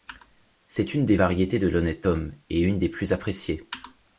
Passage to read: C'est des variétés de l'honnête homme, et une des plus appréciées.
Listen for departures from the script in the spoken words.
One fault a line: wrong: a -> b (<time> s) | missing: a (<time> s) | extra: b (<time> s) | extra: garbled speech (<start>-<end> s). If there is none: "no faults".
extra: une (0.9 s)